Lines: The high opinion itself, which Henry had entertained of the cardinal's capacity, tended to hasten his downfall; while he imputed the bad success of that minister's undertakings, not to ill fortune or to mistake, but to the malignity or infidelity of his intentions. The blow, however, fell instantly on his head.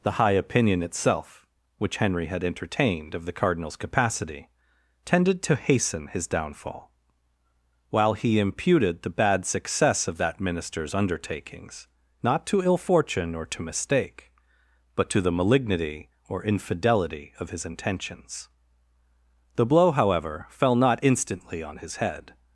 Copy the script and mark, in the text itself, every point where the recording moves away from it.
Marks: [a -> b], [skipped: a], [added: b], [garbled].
The high opinion itself, which Henry had entertained of the cardinal's capacity, tended to hasten his downfall; while he imputed the bad success of that minister's undertakings, not to ill fortune or to mistake, but to the malignity or infidelity of his intentions. The blow, however, fell [added: not] instantly on his head.